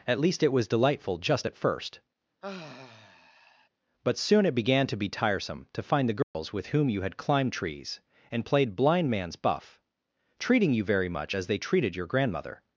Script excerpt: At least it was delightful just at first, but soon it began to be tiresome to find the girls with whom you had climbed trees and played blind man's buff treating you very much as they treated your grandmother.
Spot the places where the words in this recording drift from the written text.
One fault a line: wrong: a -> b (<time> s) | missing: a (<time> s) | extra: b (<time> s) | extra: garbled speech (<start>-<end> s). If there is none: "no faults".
no faults